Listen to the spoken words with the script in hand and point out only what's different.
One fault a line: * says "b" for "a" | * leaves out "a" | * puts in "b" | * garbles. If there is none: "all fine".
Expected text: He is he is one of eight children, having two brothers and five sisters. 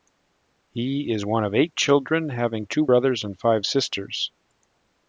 * leaves out "he is"